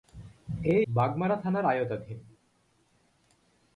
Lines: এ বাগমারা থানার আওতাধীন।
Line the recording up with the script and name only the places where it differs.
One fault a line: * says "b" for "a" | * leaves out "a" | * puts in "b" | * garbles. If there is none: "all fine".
all fine